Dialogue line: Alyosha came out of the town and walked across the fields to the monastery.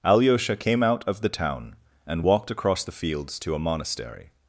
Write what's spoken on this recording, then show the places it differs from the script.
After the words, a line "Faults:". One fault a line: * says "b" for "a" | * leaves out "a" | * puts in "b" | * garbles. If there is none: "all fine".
Alyosha came out of the town and walked across the fields to a monastery.
Faults:
* says "a" for "the"